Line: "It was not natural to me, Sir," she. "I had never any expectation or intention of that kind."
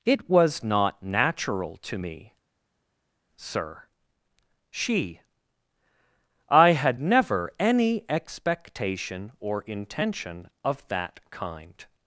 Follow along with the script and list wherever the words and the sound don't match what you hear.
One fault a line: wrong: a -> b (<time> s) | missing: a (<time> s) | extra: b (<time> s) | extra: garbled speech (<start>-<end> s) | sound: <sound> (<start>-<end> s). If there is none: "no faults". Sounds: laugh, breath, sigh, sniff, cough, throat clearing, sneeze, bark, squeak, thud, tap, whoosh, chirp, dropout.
no faults